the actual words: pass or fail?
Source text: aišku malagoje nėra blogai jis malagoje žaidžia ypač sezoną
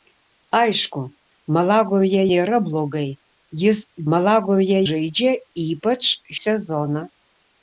pass